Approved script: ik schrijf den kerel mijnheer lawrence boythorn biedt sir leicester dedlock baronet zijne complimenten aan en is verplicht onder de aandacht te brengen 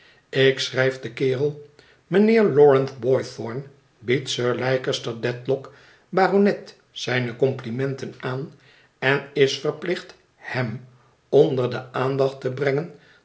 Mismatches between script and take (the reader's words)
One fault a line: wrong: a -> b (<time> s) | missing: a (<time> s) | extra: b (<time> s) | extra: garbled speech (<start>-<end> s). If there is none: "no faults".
extra: hem (10.4 s)